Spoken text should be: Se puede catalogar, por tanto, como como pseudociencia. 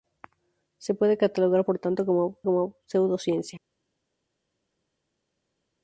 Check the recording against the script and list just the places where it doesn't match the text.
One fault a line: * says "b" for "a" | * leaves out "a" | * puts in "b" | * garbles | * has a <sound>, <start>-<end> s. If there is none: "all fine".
all fine